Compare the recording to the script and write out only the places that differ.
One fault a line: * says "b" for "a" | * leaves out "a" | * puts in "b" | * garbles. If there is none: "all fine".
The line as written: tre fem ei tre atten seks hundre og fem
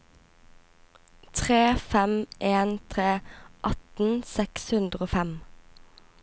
* says "en" for "ei"